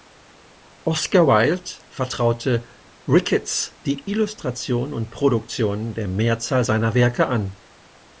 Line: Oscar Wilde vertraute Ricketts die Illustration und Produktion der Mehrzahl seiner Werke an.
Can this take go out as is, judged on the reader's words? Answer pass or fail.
pass